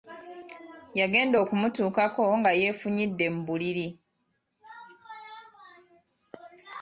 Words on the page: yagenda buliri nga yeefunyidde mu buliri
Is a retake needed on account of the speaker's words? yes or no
yes